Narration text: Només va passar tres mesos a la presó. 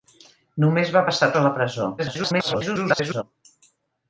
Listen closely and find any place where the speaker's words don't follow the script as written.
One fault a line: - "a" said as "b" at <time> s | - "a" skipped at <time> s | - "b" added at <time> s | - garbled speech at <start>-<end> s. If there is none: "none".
- "tres mesos" skipped at 1.3 s
- garbled speech at 2.0-3.2 s